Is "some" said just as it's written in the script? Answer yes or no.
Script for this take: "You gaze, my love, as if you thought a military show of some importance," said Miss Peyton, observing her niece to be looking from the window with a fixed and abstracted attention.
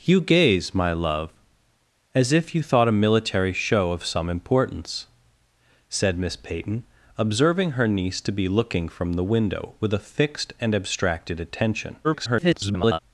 yes